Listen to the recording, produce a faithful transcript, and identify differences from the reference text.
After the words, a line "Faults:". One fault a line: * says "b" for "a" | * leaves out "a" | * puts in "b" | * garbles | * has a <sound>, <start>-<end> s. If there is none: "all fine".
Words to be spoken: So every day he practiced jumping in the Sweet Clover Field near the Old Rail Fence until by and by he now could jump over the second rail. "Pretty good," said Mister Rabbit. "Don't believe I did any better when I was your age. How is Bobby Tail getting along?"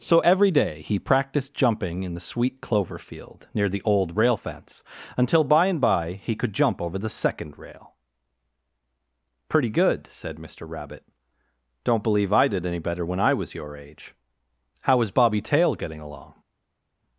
So every day he practiced jumping in the Sweet Clover Field near the Old Rail Fence until by and by he could jump over the second rail. "Pretty good," said Mister Rabbit. "Don't believe I did any better when I was your age. How is Bobby Tail getting along?"
Faults:
* leaves out "now"